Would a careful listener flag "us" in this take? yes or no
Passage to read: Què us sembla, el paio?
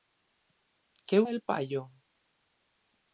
yes